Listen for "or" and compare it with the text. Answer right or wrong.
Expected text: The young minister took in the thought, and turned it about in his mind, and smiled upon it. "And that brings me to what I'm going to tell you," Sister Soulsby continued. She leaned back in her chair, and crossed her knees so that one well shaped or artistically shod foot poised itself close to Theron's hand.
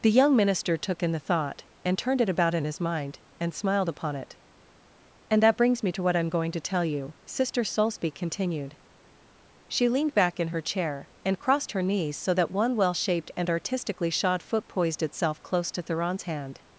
wrong